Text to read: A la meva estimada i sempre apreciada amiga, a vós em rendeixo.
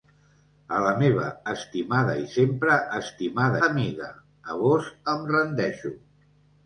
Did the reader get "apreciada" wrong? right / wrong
wrong